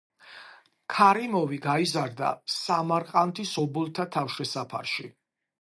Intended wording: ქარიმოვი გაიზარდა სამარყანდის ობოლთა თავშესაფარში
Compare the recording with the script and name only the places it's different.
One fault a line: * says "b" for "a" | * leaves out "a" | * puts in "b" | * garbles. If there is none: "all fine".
all fine